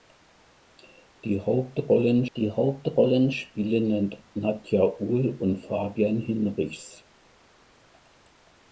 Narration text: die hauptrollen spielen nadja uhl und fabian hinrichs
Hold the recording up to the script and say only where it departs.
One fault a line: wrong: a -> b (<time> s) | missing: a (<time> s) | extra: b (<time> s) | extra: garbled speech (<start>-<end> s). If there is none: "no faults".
extra: die hauptrollen (2.4 s)